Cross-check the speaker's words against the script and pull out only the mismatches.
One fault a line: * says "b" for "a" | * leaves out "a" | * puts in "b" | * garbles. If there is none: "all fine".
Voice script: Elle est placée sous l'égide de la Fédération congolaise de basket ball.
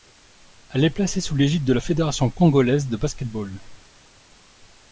all fine